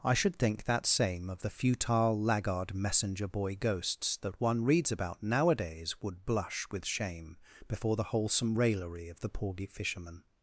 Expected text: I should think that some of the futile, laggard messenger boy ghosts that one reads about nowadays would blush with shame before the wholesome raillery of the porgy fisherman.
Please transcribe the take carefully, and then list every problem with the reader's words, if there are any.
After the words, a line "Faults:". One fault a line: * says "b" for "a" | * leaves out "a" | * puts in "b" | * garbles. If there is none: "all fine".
I should think that same of the futile, laggard messenger boy ghosts that one reads about nowadays would blush with shame before the wholesome raillery of the porgy fisherman.
Faults:
* says "same" for "some"